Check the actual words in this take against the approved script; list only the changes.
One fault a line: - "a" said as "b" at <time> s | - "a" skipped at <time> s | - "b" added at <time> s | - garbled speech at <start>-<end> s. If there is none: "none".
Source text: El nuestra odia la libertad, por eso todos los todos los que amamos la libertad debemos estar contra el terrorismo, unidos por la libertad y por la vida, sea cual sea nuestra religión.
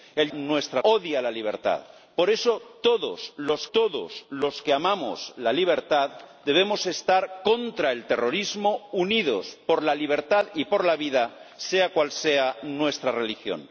none